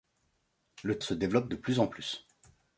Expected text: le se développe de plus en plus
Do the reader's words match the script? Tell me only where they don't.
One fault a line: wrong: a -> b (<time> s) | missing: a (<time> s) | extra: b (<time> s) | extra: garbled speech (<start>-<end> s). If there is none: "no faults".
no faults